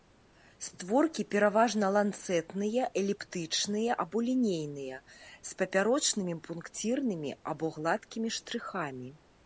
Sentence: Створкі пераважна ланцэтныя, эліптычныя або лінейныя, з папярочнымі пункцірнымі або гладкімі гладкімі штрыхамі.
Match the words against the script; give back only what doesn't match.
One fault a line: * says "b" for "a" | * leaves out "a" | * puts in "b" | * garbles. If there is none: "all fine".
* leaves out "гладкімі"